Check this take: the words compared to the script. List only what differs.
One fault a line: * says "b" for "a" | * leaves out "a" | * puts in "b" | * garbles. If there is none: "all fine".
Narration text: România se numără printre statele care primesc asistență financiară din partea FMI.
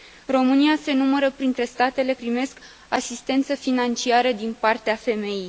* leaves out "care"